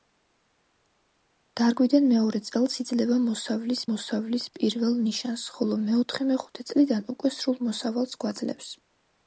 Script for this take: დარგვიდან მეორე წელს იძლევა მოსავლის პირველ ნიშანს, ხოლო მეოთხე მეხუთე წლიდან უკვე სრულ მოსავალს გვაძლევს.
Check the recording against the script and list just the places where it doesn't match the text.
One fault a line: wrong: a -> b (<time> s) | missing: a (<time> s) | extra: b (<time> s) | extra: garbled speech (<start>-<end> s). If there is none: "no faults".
extra: მოსავლის (3.9 s)